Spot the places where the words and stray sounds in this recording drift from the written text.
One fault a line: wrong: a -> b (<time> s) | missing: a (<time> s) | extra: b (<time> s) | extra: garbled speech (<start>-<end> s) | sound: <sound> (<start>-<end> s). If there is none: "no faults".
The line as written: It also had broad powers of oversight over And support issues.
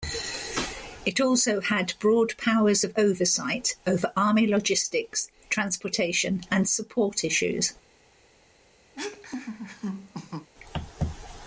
extra: Army logistics transportation (4.1 s)
sound: laugh (8.9-10.5 s)